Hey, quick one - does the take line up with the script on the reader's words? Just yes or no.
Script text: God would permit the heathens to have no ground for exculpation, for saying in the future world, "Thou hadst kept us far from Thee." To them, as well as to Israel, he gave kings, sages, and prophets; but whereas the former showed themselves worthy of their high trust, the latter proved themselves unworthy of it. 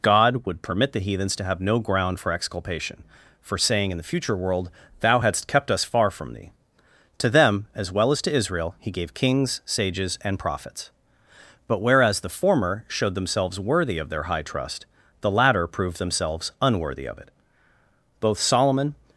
no